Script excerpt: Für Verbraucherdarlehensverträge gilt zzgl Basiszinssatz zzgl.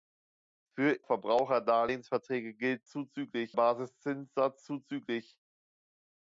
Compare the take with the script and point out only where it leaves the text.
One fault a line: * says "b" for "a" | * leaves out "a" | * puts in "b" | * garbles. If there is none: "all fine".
all fine